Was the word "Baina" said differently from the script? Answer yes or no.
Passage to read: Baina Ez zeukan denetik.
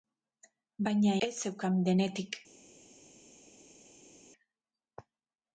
no